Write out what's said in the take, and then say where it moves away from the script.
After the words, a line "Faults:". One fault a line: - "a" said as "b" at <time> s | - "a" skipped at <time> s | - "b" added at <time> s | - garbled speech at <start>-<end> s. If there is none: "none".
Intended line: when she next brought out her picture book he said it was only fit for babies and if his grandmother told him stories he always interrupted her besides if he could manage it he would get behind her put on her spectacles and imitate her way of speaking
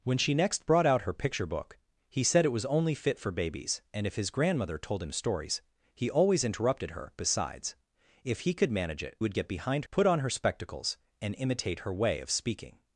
when she next brought out her picture book he said it was only fit for babies and if his grandmother told him stories he always interrupted her besides if he could manage it would get behind put on her spectacles and imitate her way of speaking
Faults:
- "he" skipped at 9.2 s
- "her" skipped at 9.9 s